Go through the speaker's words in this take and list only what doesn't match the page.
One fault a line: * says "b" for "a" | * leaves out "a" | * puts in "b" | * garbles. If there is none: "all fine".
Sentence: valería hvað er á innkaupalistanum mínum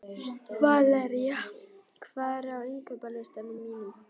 all fine